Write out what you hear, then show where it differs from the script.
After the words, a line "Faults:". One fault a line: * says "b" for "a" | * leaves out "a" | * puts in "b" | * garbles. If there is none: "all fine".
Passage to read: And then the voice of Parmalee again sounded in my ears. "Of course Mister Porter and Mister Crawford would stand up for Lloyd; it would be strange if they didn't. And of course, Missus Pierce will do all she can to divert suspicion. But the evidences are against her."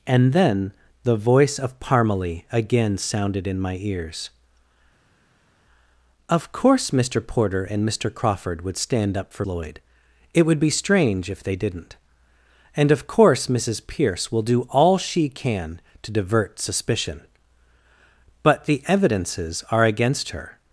And then the voice of Parmalee again sounded in my ears. "Of course Mister Porter and Mister Crawford would stand up for Lloyd; it would be strange if they didn't. And of course, Missus Pierce will do all she can to divert suspicion. But the evidences are against her."
Faults:
all fine